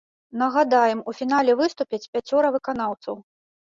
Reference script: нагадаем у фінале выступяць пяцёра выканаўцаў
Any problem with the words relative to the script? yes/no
no